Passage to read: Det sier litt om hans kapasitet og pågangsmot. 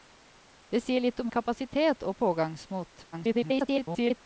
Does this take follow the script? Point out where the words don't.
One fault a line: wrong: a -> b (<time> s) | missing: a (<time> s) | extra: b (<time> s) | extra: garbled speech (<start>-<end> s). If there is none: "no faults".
missing: hans (1.3 s)
extra: garbled speech (3.1-4.2 s)